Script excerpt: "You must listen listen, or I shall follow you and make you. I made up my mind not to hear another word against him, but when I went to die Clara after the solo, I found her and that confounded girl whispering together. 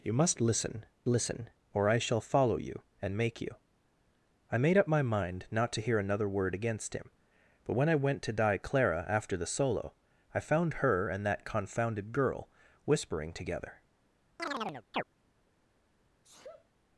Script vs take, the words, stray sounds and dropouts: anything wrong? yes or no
yes